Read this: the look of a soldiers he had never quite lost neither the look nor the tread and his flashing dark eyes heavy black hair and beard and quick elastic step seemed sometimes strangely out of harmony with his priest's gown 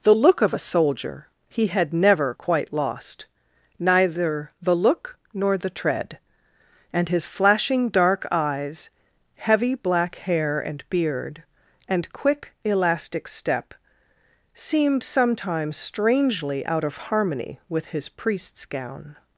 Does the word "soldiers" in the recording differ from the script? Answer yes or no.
yes